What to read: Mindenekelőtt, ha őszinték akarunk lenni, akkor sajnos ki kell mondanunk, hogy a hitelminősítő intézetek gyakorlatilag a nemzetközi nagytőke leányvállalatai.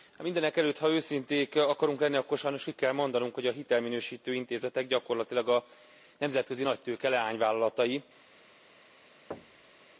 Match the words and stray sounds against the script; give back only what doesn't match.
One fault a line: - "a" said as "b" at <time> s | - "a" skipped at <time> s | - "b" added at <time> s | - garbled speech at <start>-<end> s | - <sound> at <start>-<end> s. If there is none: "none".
- thud at 9.3-9.8 s